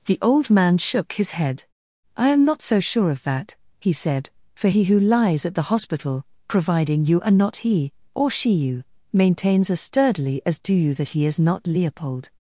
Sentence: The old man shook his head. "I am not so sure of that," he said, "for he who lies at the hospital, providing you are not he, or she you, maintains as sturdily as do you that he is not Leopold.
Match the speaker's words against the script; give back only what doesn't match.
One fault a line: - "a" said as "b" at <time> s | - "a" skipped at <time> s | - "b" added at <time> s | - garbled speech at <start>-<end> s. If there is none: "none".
none